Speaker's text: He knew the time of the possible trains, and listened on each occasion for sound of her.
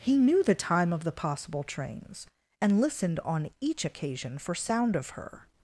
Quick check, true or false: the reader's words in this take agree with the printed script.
true